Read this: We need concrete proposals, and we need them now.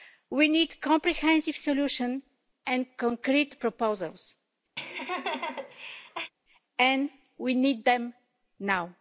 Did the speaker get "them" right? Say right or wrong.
right